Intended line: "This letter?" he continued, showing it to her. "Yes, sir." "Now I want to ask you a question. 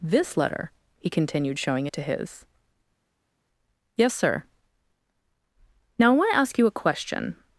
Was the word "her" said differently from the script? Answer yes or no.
yes